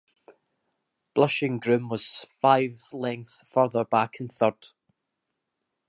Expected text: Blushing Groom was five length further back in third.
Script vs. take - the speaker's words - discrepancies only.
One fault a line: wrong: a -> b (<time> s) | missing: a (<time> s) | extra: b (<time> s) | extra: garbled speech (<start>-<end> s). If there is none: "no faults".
no faults